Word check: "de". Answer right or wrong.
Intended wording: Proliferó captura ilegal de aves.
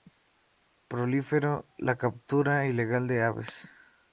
right